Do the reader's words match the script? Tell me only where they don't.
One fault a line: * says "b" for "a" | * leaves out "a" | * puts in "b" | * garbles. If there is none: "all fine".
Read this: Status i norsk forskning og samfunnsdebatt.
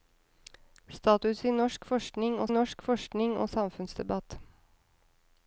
* puts in "norsk forskning og"